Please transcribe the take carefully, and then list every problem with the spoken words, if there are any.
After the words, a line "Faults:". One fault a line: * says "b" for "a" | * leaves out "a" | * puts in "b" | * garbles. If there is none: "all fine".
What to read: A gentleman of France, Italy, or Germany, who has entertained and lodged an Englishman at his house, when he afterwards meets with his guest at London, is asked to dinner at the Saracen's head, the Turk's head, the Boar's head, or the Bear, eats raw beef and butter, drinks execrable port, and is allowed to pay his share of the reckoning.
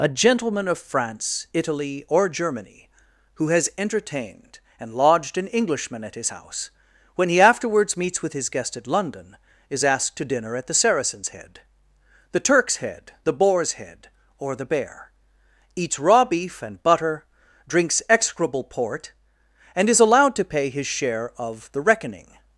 A gentleman of France, Italy, or Germany, who has entertained and lodged an Englishman at his house, when he afterwards meets with his guest at London, is asked to dinner at the Saracen's head, the Turk's head, the Boar's head, or the Bear, eats raw beef and butter, drinks execrable port, and is allowed to pay his share of the reckoning.
Faults:
all fine